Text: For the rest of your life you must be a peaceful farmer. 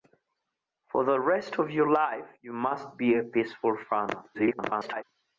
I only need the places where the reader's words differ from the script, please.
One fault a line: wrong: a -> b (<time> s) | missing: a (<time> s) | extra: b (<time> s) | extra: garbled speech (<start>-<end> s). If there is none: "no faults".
extra: garbled speech (4.3-5.0 s)